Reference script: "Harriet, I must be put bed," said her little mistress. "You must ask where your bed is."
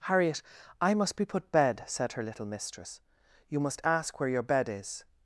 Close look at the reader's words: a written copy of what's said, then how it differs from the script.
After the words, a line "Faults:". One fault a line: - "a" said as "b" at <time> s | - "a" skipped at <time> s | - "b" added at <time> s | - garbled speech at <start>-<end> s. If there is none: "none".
"Harriet, I must be put bed," said her little mistress. "You must ask where your bed is."
Faults:
none